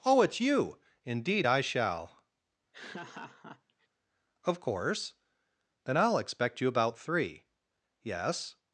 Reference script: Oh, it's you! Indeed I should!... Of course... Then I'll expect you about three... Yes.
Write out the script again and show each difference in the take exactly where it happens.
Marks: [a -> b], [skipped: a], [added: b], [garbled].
Oh, it's you! Indeed I [should!... -> shall] Of course... Then I'll expect you about three... Yes.